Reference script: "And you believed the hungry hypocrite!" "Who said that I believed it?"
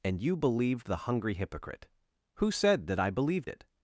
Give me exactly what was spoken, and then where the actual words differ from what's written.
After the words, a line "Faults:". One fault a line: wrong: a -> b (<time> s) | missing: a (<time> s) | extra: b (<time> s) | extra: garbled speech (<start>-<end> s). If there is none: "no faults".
"And you believed the hungry hypocrite!" "Who said that I believed it?"
Faults:
no faults